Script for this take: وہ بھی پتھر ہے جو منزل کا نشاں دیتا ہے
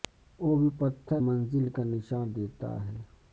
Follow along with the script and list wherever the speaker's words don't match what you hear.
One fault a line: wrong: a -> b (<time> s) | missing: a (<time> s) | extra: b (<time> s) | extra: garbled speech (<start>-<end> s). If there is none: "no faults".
missing: ہے جو (1.2 s)